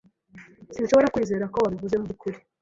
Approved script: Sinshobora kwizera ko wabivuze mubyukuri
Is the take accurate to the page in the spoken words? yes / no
yes